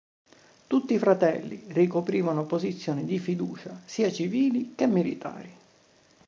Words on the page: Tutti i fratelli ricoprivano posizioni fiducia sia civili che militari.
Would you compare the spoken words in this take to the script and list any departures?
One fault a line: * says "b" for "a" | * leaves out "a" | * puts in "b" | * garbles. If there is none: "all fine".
* puts in "di"